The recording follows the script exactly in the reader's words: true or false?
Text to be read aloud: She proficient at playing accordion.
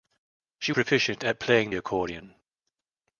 true